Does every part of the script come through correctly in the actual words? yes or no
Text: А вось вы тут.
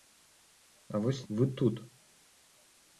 yes